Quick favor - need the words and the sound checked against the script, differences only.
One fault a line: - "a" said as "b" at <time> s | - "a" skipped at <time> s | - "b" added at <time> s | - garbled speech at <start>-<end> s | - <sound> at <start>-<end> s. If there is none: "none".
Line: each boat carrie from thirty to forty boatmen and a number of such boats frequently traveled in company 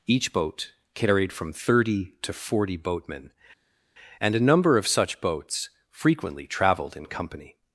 - "carrie" said as "carried" at 0.9 s